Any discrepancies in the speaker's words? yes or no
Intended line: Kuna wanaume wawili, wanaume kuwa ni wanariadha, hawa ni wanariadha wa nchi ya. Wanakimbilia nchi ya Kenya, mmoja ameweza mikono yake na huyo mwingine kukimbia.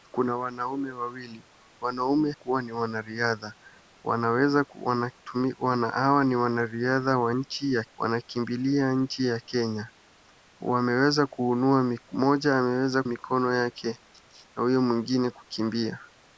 no